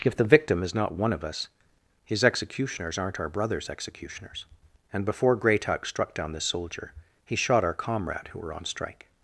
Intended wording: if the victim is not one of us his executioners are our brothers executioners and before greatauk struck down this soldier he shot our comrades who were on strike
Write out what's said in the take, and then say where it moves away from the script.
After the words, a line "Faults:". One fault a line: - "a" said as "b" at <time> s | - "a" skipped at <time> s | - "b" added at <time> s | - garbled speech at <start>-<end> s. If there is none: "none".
if the victim is not one of us his executioners aren't our brothers executioners and before greatauk struck down this soldier he shot our comrade who were on strike
Faults:
- "are" said as "aren't" at 3.0 s
- "comrades" said as "comrade" at 7.7 s